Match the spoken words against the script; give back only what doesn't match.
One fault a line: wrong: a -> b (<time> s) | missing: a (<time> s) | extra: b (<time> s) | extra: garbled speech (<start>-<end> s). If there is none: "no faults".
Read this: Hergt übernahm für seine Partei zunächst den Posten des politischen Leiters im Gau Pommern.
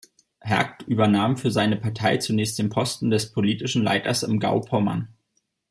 no faults